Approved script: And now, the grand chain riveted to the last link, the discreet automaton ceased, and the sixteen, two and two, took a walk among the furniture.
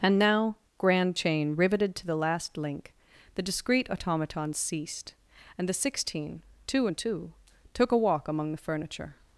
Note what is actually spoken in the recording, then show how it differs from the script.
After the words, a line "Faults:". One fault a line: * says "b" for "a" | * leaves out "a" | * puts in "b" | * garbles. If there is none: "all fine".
And now, grand chain riveted to the last link, the discreet automaton ceased, and the sixteen, two and two, took a walk among the furniture.
Faults:
* leaves out "the"